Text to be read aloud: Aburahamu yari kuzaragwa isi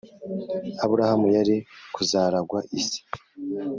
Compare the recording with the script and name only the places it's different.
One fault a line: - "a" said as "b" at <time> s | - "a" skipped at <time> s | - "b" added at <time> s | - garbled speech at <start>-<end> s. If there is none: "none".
none